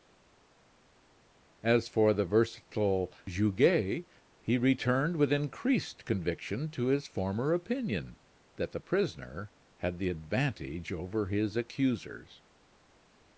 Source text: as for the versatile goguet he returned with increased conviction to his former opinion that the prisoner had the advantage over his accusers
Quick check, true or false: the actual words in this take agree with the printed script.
true